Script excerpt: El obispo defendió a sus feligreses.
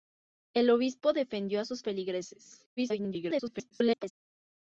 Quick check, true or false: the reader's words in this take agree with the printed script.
false